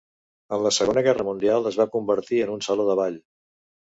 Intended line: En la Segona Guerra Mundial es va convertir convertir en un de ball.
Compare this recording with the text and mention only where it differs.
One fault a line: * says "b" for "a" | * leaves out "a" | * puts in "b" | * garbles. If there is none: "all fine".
* leaves out "convertir"
* puts in "saló"